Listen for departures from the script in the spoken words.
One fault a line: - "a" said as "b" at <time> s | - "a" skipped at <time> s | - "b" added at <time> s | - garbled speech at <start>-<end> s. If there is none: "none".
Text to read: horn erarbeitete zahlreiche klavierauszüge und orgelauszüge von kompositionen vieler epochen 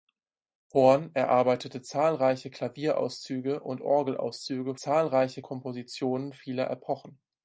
- "von" said as "zahlreiche" at 4.8 s